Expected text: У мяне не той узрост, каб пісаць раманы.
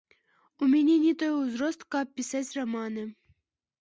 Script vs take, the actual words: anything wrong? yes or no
no